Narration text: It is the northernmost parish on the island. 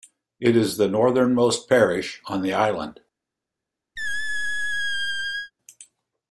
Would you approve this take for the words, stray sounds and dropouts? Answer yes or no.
no